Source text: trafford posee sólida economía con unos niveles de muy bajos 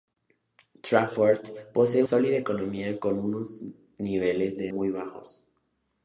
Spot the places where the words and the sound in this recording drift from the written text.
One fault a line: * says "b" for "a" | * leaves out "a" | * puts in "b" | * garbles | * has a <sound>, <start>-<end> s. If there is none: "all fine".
all fine